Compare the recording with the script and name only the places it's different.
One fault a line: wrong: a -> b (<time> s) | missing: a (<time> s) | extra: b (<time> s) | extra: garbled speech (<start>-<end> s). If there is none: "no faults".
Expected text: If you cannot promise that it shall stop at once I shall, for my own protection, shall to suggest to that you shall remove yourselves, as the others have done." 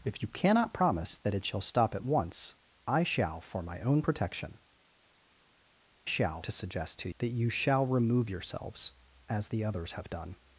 no faults